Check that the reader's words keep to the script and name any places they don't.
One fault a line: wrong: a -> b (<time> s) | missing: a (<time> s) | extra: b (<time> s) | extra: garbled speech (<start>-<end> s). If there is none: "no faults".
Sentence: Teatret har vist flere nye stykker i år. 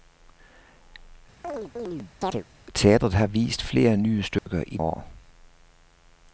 no faults